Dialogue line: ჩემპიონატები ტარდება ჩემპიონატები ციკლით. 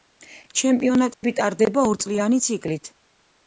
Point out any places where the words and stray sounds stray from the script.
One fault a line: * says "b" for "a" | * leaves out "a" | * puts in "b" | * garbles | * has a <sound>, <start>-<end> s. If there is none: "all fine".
* has a dropout, 1.1-1.2 s
* says "ორწლიანი" for "ჩემპიონატები"